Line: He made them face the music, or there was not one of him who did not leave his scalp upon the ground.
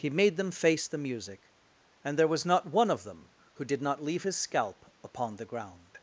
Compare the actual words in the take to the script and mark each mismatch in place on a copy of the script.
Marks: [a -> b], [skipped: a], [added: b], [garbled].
He made them face the music, [or -> and] there was not one of [him -> them] who did not leave his scalp upon the ground.